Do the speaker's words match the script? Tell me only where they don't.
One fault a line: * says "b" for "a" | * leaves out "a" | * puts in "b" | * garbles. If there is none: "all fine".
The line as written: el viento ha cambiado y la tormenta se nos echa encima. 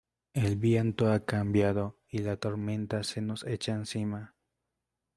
all fine